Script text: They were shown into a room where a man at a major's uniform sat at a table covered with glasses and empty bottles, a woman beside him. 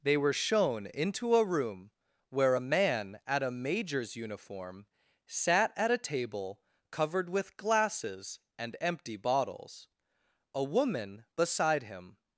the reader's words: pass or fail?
pass